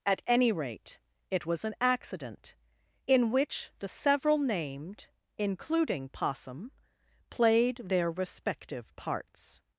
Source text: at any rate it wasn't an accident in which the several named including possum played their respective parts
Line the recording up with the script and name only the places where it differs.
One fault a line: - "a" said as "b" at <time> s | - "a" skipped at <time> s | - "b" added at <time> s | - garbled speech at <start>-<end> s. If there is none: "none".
- "wasn't" said as "was" at 1.4 s